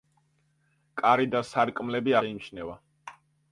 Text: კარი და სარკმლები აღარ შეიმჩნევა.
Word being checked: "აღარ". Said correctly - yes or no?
no